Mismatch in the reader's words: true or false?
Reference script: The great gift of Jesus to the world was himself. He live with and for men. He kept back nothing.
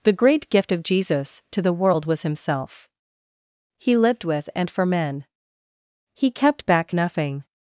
true